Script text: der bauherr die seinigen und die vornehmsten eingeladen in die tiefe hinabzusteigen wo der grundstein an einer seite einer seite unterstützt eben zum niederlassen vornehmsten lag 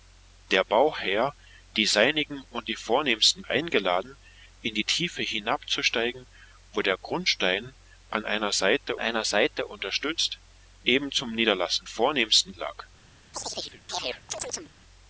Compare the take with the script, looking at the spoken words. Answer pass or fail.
pass